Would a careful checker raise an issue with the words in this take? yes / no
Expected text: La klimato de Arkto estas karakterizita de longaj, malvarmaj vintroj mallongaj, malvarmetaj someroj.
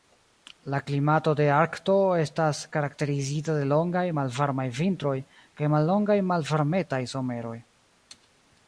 yes